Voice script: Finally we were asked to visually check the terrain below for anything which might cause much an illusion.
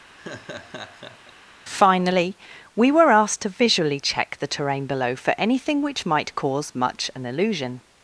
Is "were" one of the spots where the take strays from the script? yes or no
no